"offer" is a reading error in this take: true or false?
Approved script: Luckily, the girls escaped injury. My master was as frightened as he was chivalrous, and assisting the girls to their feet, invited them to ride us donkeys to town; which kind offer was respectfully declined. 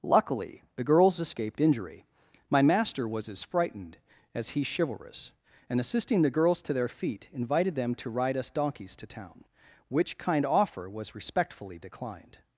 false